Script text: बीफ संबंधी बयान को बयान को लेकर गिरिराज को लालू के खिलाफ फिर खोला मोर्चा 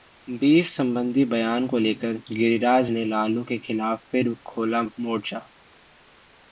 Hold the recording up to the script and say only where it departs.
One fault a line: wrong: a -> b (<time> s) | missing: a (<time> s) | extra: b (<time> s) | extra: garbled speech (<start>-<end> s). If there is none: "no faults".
missing: बयान को (1.8 s)
wrong: को -> ने (2.9 s)